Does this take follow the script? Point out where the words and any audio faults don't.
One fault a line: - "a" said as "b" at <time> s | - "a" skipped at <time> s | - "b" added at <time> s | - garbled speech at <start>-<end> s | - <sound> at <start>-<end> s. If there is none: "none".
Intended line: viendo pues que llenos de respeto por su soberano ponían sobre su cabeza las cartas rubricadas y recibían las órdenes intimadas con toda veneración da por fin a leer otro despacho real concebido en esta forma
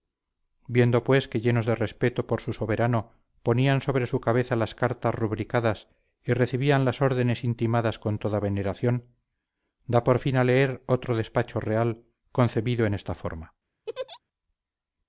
- laugh at 13.9-14.2 s